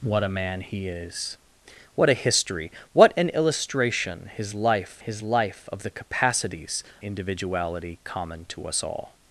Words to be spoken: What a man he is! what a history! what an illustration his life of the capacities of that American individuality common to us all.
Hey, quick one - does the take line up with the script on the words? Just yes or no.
no